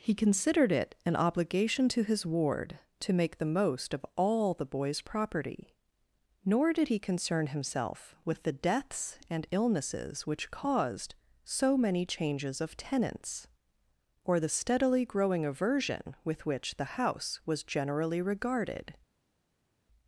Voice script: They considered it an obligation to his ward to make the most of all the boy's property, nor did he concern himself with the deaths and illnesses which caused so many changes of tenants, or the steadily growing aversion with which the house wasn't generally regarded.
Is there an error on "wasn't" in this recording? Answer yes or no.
yes